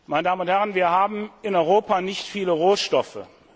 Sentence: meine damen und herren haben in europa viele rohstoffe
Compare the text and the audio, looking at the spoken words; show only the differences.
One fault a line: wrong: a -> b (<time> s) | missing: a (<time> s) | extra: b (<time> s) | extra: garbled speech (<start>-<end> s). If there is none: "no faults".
extra: wir (0.7 s)
extra: nicht (2.0 s)